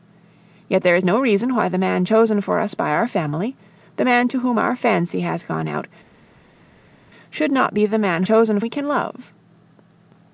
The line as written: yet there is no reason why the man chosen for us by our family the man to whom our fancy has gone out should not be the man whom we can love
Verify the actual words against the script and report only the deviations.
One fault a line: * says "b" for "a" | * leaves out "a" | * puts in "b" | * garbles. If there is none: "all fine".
* says "chosen" for "whom"